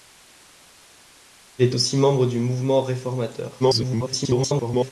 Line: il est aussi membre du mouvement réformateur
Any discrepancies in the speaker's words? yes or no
yes